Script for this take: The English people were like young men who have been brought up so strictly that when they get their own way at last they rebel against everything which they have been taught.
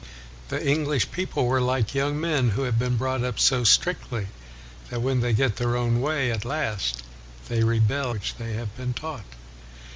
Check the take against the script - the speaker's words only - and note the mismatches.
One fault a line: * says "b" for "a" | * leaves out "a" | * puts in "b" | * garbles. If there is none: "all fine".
* leaves out "against everything"